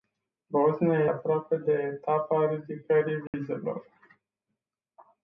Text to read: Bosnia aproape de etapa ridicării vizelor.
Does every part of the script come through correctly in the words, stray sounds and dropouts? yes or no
no